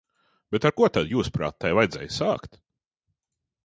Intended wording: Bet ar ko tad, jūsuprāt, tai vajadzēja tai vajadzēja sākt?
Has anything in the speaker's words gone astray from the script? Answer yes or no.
yes